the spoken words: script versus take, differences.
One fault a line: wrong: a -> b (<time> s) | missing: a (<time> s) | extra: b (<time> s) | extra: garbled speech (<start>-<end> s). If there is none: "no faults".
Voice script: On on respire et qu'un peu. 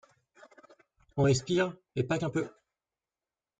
missing: on (1.2 s)
extra: pas (2.0 s)